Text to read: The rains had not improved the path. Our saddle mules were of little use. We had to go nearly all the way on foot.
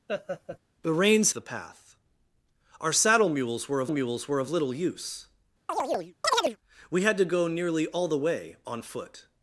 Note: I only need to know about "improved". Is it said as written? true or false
false